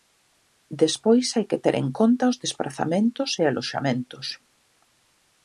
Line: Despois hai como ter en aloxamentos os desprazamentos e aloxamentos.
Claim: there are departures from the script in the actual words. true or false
true